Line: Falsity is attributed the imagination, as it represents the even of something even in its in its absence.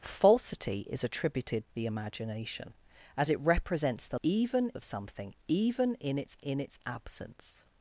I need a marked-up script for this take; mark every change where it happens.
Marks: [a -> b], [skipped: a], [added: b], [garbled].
Falsity is attributed the imagination, as it represents the even of something even in its in its absence.